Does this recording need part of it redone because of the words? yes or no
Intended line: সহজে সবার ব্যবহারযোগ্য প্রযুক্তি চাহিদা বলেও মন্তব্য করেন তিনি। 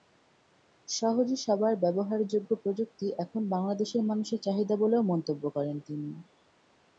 yes